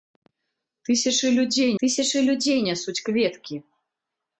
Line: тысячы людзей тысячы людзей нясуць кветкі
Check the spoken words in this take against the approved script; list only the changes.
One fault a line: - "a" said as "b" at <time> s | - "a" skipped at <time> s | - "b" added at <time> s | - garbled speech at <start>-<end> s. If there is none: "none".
none